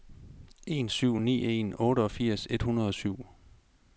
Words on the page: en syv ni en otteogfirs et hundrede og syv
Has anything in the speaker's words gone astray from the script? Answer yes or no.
no